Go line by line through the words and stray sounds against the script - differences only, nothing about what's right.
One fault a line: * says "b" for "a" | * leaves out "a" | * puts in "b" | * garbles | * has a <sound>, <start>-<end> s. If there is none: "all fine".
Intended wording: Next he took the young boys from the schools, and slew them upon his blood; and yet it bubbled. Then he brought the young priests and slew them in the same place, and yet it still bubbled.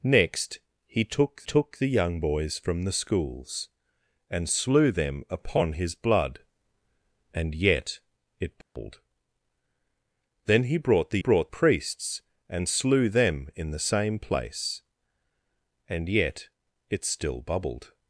* puts in "took"
* has a dropout, 8.6-8.8 s
* says "brought" for "young"